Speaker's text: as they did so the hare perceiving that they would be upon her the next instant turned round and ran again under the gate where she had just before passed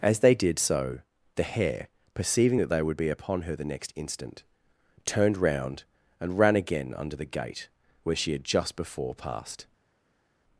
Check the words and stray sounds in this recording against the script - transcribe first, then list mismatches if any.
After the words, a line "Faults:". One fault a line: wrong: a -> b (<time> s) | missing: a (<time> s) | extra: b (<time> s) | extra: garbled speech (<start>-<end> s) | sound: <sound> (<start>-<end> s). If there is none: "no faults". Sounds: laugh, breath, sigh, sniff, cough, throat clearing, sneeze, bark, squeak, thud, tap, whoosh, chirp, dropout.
as they did so the hare perceiving that they would be upon her the next instant turned round and ran again under the gate where she had just before passed
Faults:
no faults